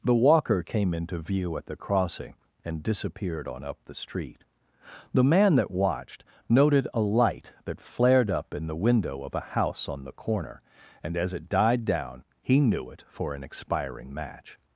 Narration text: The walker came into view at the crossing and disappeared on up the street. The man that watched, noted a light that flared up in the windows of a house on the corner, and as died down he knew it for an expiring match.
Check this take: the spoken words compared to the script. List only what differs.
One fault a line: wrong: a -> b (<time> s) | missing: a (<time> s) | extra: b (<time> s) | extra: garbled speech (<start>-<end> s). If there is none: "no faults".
wrong: windows -> window (8.8 s)
extra: it (11.3 s)